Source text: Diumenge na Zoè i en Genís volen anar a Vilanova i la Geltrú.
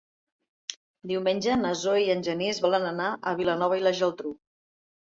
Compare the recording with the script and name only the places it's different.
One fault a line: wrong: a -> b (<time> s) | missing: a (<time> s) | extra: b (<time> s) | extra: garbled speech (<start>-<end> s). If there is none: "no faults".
no faults